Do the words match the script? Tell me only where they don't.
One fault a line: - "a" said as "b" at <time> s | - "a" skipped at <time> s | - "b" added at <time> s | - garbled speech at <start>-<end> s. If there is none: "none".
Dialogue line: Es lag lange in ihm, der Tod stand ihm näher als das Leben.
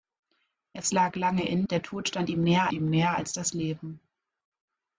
- "ihm" skipped at 1.7 s
- "ihm näher" added at 2.7 s